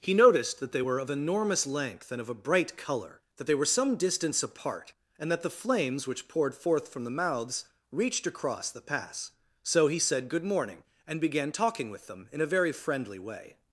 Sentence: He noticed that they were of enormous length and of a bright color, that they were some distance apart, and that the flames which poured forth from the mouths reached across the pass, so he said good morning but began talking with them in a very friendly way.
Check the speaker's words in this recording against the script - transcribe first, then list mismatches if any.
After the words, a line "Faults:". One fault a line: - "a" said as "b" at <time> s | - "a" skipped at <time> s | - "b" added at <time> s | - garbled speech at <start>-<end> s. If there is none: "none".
He noticed that they were of enormous length and of a bright color, that they were some distance apart, and that the flames which poured forth from the mouths reached across the pass, so he said good morning and began talking with them in a very friendly way.
Faults:
- "but" said as "and" at 11.0 s